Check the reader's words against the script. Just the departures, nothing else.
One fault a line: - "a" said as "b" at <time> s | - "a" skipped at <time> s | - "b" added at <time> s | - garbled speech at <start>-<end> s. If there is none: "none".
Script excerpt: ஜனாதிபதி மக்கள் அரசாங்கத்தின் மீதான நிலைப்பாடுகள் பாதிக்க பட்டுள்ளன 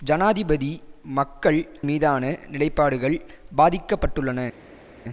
- "அரசாங்கத்தின்" skipped at 1.6 s